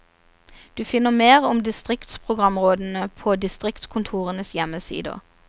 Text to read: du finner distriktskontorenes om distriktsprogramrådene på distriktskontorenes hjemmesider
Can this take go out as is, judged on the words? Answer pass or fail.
fail